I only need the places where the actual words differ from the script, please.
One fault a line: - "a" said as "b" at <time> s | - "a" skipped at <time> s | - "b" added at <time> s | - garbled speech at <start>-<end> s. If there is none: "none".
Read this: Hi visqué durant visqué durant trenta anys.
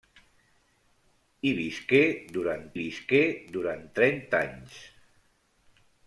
none